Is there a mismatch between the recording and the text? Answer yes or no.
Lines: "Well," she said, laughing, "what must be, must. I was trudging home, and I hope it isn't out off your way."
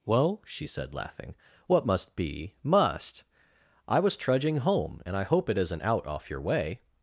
no